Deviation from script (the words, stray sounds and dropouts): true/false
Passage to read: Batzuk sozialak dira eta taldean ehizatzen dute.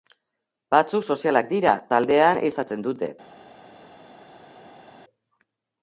true